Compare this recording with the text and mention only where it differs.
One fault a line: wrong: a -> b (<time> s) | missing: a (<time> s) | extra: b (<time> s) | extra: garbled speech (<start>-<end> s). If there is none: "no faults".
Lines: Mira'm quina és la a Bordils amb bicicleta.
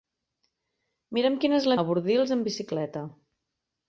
no faults